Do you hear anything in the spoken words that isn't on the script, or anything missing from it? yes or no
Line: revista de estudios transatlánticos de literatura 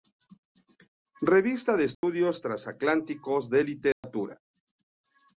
no